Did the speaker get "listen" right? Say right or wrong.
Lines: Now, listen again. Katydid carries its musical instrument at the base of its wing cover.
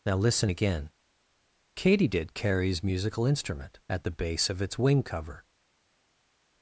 right